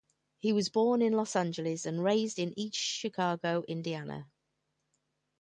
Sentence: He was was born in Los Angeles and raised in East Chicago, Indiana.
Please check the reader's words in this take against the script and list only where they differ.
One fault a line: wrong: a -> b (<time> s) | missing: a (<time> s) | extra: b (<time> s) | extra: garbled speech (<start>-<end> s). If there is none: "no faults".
missing: was (0.7 s)